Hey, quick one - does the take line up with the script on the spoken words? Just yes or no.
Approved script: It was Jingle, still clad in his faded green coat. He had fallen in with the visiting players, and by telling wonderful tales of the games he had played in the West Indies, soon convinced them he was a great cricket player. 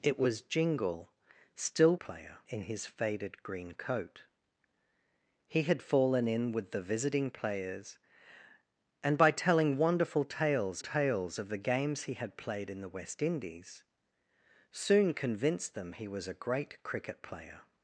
no